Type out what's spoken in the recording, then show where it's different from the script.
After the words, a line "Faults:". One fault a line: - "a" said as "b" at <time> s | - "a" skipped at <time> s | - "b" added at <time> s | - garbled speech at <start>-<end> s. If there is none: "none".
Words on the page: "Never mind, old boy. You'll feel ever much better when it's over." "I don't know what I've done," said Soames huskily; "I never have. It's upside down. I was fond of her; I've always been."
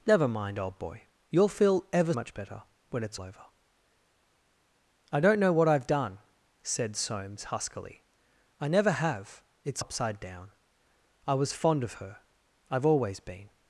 "Never mind, old boy. You'll feel ever much better when it's over." "I don't know what I've done," said Soames huskily; "I never have. It's upside down. I was fond of her; I've always been."
Faults:
none